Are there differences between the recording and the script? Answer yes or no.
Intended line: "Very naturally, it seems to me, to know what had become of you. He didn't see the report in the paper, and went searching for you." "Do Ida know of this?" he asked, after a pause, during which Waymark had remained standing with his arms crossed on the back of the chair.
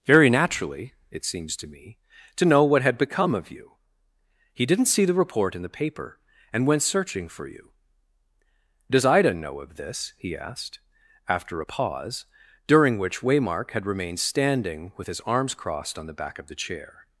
yes